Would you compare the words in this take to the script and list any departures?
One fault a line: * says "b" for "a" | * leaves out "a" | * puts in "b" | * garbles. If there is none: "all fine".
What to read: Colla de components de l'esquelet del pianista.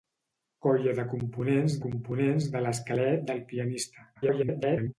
* puts in "components"
* garbles